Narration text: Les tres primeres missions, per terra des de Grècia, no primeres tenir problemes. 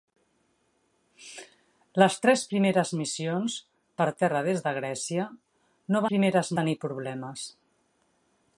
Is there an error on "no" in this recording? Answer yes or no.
no